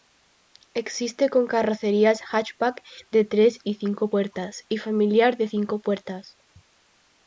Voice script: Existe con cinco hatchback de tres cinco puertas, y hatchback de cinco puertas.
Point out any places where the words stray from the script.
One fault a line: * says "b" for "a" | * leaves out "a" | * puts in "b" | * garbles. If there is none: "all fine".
* says "carrocerías" for "cinco"
* puts in "y"
* says "familiar" for "hatchback"